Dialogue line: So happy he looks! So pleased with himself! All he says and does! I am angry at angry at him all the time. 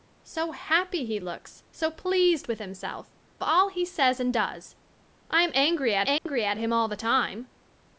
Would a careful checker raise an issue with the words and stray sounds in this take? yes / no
yes